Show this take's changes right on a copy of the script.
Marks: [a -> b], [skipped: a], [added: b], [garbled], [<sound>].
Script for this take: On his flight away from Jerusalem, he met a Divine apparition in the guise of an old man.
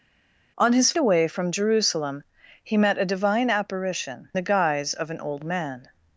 On his [skipped: flight] away from Jerusalem, he met a Divine apparition [skipped: in] the guise of an old man.